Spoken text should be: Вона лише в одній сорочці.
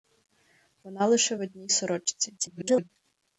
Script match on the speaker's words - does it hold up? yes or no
no